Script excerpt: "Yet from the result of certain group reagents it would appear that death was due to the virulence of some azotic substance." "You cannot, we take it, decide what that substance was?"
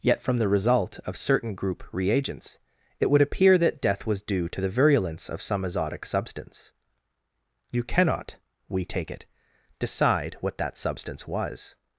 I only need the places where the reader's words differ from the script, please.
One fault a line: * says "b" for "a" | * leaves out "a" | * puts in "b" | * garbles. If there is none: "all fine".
all fine